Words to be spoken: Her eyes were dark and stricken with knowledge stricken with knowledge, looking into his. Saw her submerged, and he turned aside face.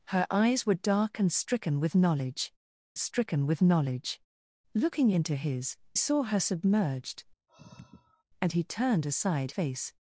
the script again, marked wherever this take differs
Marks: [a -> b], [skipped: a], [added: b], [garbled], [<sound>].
Her eyes were dark and stricken with knowledge stricken with knowledge, looking into his. Saw her submerged, [sigh] and he turned aside face.